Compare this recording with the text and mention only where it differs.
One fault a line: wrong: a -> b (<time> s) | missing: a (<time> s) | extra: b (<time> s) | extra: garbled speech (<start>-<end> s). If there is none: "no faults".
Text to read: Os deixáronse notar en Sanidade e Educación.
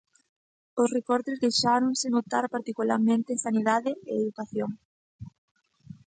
extra: recortes (1.0 s)
extra: particularmente (2.5 s)